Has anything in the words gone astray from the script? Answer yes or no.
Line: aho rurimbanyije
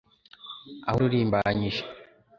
no